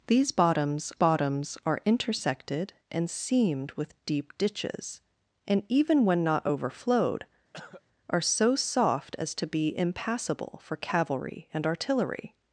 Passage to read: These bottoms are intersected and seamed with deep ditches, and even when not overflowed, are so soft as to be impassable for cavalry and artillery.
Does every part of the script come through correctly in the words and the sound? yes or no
no